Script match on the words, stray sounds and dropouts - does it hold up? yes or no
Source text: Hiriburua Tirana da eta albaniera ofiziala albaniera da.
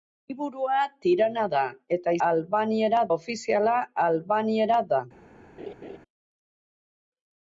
no